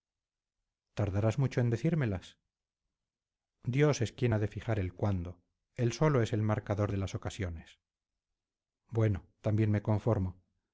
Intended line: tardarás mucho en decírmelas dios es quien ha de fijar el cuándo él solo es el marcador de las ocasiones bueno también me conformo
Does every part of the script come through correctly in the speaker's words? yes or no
yes